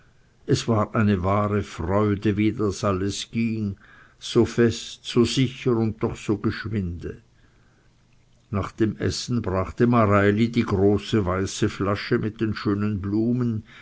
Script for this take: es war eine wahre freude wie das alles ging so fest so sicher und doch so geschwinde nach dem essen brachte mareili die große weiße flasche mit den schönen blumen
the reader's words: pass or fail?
pass